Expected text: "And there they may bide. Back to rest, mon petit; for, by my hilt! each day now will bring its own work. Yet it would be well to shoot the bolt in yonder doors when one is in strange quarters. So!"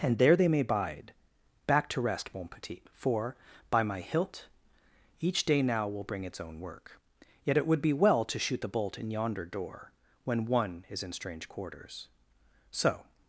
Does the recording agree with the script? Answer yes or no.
no